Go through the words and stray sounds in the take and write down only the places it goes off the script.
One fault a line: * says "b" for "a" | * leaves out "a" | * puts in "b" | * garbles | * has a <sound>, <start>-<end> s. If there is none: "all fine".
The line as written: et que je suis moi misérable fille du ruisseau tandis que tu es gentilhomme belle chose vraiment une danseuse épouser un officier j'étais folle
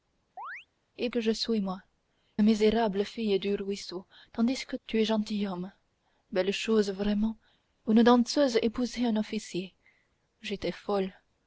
* has a chirp, 0.4-0.7 s